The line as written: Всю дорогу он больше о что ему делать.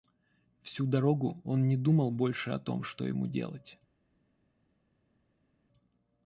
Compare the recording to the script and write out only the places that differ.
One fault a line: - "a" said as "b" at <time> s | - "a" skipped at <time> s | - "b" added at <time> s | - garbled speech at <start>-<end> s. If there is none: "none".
- "не думал" added at 1.7 s
- "том" added at 2.6 s